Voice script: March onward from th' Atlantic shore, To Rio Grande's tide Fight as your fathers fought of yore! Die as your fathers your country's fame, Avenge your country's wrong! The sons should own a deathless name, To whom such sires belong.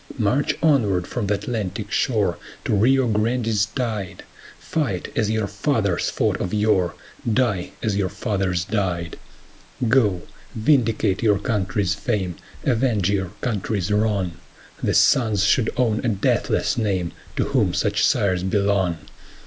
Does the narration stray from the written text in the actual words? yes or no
yes